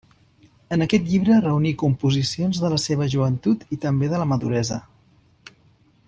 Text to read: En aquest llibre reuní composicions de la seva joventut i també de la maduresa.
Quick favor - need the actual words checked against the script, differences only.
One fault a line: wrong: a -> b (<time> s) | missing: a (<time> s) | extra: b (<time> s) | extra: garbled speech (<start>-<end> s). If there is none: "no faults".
no faults